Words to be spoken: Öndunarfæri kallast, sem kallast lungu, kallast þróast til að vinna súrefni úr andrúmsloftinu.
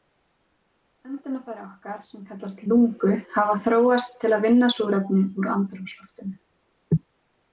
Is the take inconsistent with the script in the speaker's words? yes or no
yes